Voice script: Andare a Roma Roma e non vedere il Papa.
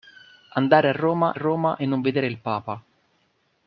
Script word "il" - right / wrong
right